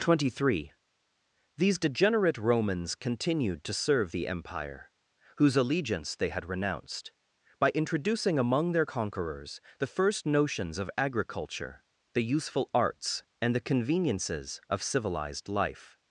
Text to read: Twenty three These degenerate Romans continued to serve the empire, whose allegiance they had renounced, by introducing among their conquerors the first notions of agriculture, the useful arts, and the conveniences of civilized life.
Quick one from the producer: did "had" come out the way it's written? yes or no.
yes